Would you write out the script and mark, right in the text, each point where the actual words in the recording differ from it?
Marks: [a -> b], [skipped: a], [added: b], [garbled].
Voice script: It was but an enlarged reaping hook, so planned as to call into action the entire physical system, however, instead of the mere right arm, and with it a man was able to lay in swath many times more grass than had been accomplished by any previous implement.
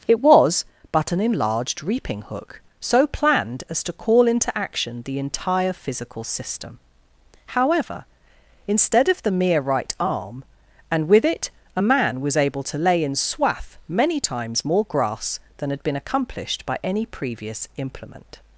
It was but an enlarged reaping hook, so planned as to call into action the entire physical system, however, instead of the mere right arm, and with it a man was able to lay in swath many times more grass than had been accomplished by any previous implement.